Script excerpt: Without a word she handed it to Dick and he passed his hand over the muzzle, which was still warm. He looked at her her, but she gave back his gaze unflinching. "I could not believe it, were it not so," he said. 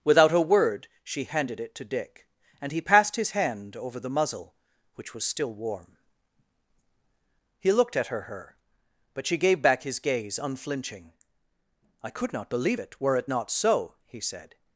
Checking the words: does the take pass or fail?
pass